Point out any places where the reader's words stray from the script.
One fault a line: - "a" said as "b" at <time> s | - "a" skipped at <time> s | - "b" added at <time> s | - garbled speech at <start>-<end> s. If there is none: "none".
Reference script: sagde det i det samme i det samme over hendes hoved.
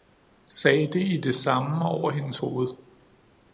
- "i det samme" skipped at 1.9 s